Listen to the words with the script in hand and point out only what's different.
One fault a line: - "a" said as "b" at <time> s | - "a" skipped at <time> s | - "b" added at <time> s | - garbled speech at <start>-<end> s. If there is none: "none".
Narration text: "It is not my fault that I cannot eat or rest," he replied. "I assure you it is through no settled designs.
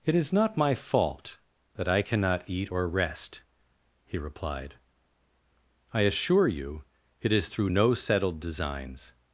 none